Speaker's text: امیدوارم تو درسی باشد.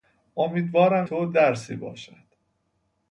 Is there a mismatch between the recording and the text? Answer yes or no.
no